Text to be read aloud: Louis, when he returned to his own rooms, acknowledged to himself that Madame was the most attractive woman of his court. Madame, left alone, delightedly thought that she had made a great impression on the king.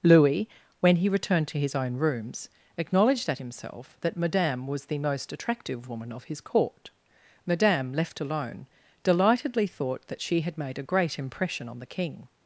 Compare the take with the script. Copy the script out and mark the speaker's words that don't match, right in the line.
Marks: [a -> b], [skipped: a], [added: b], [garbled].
Louis, when he returned to his own rooms, acknowledged [to -> at] himself that Madame was the most attractive woman of his court. Madame, left alone, delightedly thought that she had made a great impression on the king.